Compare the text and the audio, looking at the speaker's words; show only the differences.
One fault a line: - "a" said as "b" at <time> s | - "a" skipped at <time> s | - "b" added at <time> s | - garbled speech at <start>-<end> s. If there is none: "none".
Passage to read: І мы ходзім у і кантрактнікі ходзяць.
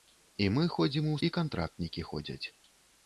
none